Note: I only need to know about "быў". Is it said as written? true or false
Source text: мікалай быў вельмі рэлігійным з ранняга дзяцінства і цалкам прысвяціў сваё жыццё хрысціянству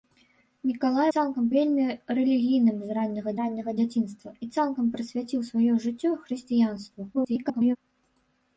false